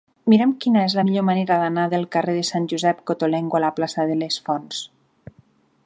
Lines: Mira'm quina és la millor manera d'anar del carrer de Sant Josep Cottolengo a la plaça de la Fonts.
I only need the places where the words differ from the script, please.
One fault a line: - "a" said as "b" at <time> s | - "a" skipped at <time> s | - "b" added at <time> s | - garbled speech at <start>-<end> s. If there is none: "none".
- "la" said as "les" at 4.2 s